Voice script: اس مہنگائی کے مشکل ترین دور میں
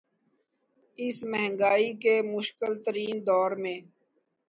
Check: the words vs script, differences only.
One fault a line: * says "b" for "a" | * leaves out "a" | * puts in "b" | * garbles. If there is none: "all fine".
all fine